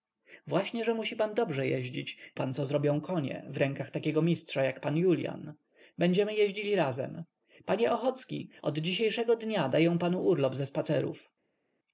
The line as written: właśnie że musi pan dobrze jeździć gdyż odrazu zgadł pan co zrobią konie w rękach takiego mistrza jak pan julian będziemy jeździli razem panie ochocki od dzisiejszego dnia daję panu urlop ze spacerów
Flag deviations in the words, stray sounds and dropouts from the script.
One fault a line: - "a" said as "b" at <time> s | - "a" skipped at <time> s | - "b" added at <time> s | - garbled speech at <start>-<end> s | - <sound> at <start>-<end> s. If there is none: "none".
- "gdyż odrazu zgadł" skipped at 2.2 s